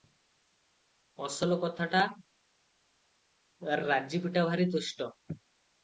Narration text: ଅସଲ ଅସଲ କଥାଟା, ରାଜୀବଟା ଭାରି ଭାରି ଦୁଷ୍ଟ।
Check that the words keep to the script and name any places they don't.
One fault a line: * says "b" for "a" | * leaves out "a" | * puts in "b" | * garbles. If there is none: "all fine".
* leaves out "ଅସଲ"
* leaves out "ଭାରି"